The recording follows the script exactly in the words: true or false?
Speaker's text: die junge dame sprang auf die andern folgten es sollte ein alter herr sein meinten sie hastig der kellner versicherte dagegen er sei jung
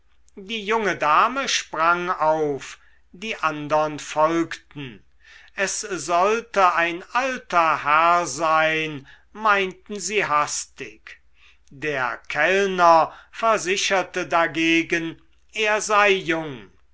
true